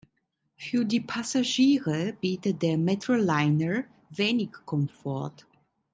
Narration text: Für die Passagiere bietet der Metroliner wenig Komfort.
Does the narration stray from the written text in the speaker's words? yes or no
no